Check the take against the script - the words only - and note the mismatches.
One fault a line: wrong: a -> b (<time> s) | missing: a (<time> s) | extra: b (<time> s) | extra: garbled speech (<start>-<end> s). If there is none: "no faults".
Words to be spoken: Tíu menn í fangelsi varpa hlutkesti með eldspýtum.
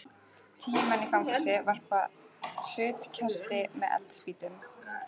no faults